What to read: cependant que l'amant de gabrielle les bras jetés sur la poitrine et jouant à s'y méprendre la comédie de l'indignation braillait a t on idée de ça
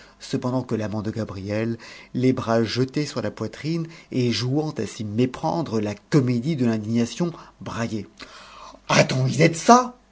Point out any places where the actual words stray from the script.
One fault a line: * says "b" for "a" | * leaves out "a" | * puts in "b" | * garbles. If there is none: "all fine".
all fine